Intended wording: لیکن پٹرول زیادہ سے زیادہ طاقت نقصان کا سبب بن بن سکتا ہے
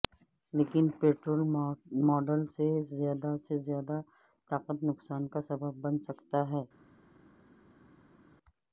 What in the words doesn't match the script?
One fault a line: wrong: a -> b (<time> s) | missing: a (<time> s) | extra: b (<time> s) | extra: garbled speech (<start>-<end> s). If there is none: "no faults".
extra: ماڈل سے (2.0 s)
missing: بن (6.0 s)